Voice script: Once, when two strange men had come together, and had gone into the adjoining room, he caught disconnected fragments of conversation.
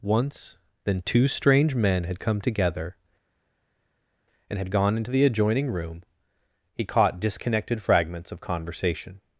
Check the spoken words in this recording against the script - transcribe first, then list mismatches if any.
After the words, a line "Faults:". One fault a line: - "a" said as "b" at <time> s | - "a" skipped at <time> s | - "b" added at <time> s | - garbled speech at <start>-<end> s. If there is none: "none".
Once, then two strange men had come together, and had gone into the adjoining room, he caught disconnected fragments of conversation.
Faults:
- "when" said as "then" at 0.8 s